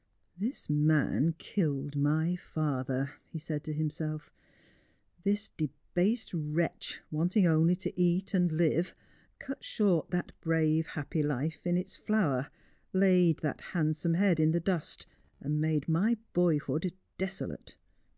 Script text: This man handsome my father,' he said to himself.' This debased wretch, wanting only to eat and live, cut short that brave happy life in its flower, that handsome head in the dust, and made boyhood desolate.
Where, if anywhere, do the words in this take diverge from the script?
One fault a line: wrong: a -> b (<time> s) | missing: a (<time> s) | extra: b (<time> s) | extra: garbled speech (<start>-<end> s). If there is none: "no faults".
wrong: handsome -> killed (1.4 s)
extra: laid (12.9 s)
extra: my (15.9 s)